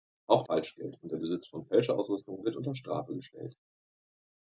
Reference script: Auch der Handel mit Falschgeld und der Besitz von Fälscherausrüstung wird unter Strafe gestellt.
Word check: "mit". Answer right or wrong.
wrong